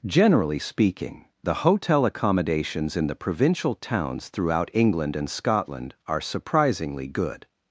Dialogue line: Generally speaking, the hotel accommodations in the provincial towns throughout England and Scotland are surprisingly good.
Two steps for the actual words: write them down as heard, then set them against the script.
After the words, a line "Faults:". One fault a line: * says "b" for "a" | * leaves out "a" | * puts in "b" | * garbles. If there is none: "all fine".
Generally speaking, the hotel accommodations in the provincial towns throughout England and Scotland are surprisingly good.
Faults:
all fine